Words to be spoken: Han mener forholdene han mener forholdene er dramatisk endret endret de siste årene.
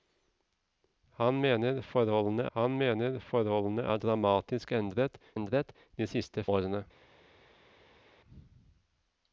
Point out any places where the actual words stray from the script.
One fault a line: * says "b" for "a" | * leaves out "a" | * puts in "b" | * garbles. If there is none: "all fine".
all fine